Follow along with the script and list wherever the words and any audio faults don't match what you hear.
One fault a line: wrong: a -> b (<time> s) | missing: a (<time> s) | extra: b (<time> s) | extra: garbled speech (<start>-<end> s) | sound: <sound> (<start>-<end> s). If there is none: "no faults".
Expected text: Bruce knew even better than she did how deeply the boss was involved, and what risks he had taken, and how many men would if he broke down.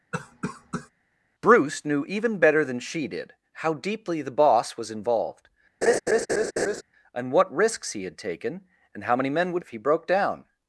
sound: cough (0.1-0.9 s)
sound: laugh (5.8-6.8 s)